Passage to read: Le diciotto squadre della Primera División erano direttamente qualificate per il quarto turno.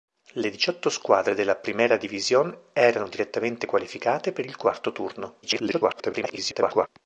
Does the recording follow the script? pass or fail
fail